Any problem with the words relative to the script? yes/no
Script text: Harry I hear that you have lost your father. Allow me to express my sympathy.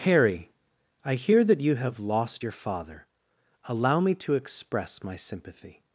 no